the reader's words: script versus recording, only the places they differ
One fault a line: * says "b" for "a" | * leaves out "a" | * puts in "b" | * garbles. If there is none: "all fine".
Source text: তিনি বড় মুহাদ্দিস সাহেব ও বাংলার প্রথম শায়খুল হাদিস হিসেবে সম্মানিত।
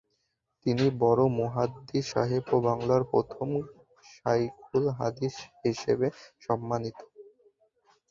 all fine